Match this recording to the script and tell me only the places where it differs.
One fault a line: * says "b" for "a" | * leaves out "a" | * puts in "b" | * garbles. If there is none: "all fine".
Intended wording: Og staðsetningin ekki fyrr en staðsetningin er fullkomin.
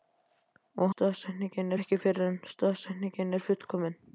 all fine